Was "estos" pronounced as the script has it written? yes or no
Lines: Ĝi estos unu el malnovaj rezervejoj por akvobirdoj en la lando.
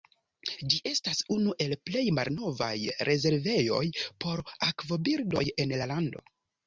no